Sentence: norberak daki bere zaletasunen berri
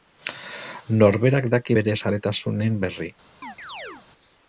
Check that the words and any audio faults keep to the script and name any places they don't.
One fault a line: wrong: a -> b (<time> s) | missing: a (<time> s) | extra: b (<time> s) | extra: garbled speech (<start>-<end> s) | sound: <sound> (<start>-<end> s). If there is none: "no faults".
sound: chirp (3.4-4.1 s)